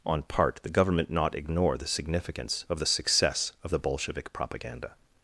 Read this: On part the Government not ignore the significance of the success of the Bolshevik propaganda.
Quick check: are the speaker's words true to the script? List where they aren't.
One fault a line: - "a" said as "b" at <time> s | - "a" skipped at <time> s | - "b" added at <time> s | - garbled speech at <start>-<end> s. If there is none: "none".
none